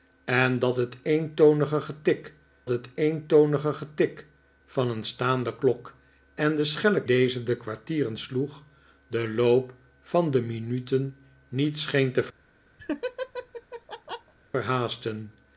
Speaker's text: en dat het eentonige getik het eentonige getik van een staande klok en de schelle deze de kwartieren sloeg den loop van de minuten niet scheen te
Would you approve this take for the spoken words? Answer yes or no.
yes